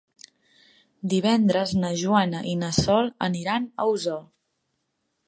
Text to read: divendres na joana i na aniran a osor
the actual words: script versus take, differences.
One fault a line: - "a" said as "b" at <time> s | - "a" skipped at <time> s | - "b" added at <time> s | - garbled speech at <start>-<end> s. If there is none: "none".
- "sol" added at 2.8 s